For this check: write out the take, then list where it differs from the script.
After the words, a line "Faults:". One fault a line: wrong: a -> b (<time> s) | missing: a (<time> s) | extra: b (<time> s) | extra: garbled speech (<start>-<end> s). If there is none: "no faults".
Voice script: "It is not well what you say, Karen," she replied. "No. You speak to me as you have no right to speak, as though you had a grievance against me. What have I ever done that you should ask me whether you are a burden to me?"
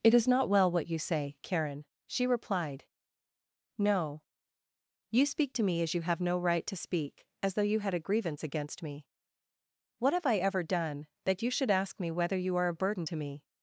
"It is not well what you say, Karen," she replied. "No. You speak to me as you have no right to speak, as though you had a grievance against me. What have I ever done that you should ask me whether you are a burden to me?"
Faults:
no faults